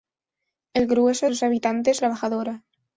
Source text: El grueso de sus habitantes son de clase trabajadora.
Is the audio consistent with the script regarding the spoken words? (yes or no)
no